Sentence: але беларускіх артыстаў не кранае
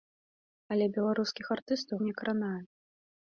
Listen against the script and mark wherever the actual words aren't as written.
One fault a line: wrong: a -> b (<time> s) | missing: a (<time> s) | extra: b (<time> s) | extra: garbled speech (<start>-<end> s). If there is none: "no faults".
no faults